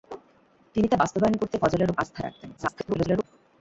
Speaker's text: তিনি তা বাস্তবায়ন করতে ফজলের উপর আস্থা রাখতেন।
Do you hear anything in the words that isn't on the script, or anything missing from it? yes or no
yes